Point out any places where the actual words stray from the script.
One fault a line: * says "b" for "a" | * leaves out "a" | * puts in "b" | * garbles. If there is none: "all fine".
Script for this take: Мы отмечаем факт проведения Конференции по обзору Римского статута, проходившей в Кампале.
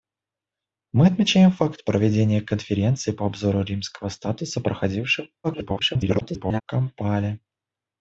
* garbles